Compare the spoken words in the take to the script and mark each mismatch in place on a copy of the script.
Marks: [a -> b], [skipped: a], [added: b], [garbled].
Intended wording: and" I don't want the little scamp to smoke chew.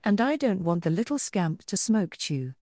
and" I don't want the little scamp to smoke chew.